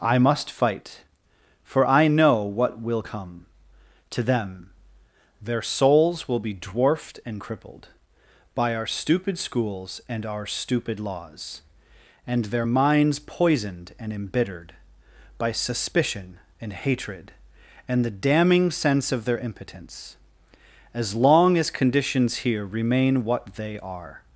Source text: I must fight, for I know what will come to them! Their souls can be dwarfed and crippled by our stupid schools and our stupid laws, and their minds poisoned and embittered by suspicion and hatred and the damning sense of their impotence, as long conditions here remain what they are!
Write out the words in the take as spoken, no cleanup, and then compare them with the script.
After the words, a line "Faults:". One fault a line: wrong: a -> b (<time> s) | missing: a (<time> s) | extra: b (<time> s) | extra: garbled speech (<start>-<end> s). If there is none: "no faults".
I must fight, for I know what will come to them! Their souls will be dwarfed and crippled by our stupid schools and our stupid laws, and their minds poisoned and embittered by suspicion and hatred and the damning sense of their impotence, as long as conditions here remain what they are!
Faults:
wrong: can -> will (6.3 s)
extra: as (21.6 s)